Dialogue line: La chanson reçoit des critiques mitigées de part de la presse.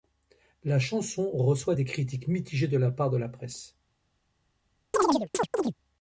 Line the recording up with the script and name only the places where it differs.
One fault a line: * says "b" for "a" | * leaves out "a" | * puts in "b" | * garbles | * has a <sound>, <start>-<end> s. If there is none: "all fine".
* puts in "la"
* has a chirp, 4.9-5.7 s